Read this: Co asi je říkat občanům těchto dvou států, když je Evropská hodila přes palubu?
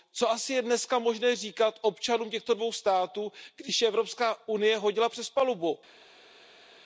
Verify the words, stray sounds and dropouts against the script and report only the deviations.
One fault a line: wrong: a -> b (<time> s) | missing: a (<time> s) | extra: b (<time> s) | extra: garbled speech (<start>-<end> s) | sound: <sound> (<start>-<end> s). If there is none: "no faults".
extra: dneska možné (0.6 s)
extra: unie (4.5 s)